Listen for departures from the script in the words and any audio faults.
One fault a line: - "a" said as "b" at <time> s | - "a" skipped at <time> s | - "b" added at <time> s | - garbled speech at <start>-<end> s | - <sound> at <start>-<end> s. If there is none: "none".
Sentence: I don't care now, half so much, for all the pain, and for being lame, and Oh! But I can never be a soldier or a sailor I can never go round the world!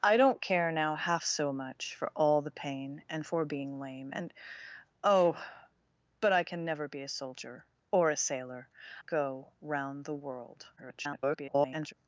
- "I can never" skipped at 8.7 s
- garbled speech at 10.8-11.9 s